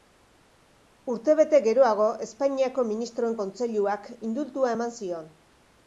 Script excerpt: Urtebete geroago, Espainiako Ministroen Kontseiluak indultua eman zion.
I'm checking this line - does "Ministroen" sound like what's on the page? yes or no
yes